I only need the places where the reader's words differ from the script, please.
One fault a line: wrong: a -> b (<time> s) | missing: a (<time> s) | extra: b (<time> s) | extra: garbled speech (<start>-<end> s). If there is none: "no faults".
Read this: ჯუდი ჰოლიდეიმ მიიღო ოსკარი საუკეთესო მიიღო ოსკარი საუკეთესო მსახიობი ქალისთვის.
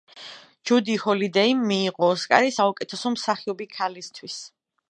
missing: მიიღო ოსკარი საუკეთესო (3.2 s)